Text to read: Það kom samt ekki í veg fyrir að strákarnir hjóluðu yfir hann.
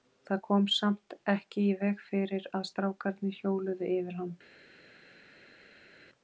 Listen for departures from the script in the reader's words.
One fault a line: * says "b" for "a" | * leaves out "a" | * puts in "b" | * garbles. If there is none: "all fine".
all fine